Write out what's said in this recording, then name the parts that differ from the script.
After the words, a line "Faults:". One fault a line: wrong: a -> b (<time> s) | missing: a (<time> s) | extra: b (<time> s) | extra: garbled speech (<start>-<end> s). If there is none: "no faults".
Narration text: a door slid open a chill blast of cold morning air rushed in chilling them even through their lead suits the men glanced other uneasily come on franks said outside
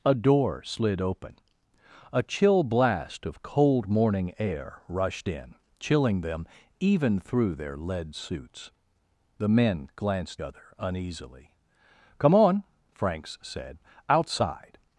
a door slid open a chill blast of cold morning air rushed in chilling them even through their lead suits the men glanced other uneasily come on franks said outside
Faults:
no faults